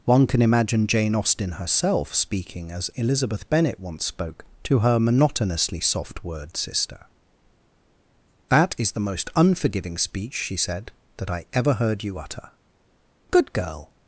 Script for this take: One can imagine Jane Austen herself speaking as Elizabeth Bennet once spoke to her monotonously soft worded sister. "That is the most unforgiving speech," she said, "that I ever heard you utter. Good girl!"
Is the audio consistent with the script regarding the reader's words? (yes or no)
no